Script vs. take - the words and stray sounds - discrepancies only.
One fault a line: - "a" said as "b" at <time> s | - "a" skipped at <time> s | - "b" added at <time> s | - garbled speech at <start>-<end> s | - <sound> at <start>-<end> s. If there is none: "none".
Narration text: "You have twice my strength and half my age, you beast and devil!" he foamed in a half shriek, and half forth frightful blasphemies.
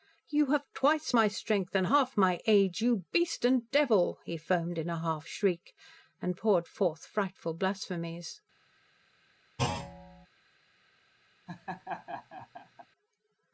- "half" said as "poured" at 6.4 s
- thud at 9.6-10.3 s
- laugh at 11.5-12.9 s